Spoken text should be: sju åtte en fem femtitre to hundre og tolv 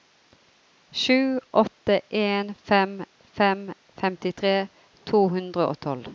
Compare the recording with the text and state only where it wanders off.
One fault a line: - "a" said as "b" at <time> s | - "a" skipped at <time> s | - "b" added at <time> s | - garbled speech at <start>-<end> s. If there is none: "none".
- "fem" added at 3.2 s